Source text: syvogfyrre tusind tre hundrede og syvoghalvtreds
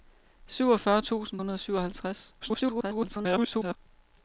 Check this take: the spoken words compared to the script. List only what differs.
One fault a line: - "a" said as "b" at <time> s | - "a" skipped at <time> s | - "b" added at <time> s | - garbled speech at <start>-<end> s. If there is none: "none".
- "tre" skipped at 1.4 s
- garbled speech at 2.4-3.8 s